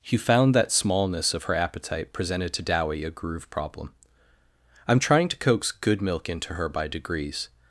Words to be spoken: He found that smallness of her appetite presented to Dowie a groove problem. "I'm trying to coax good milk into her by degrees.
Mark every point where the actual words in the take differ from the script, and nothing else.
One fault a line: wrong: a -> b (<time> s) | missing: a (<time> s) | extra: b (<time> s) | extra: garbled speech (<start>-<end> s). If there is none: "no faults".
no faults